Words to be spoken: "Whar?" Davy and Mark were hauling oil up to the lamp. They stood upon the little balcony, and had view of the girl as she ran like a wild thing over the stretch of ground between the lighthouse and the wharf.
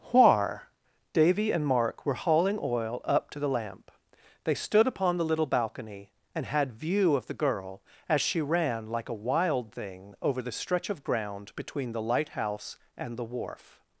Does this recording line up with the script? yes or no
yes